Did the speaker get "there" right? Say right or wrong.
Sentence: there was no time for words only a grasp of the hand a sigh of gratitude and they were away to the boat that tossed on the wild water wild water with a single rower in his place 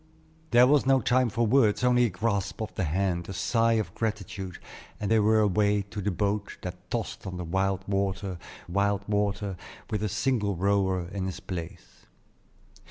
right